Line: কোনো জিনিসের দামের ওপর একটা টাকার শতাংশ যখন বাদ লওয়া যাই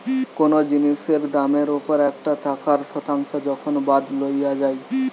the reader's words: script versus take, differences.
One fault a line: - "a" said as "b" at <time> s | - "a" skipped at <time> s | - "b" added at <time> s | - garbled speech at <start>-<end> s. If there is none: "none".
none